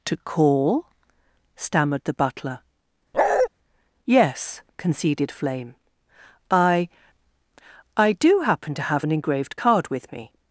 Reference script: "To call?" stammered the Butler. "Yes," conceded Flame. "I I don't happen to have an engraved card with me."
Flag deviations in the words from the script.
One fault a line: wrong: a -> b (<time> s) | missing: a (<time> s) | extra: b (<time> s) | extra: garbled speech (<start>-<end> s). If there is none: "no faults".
wrong: don't -> do (8.1 s)